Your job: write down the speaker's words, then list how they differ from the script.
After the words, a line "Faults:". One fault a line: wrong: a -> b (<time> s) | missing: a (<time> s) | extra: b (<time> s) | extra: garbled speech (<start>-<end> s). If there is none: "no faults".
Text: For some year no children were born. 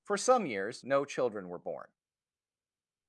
For some years no children were born.
Faults:
wrong: year -> years (0.5 s)